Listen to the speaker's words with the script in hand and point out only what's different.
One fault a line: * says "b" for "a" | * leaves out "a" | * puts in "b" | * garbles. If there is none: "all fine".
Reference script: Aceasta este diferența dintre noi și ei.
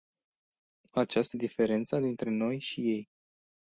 * leaves out "este"